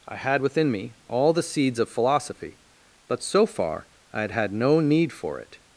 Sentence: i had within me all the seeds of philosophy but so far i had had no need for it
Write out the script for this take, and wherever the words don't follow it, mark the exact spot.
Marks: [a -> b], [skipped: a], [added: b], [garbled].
i had within me all the seeds of philosophy but so far i had had no need for it